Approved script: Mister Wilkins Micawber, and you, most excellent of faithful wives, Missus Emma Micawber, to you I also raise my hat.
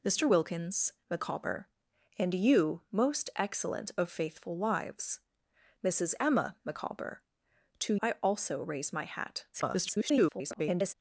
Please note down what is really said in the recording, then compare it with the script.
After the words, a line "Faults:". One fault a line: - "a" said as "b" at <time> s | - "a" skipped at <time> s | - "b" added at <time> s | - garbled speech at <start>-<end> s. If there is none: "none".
Mister Wilkins Micawber, and you, most excellent of faithful wives, Missus Emma Micawber, to I also raise my hat. [garbled]
Faults:
- "you" skipped at 8.0 s
- garbled speech at 9.5-10.9 s